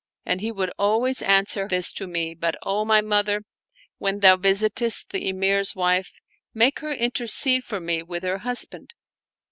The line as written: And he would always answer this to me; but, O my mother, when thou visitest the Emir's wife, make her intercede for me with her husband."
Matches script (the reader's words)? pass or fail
pass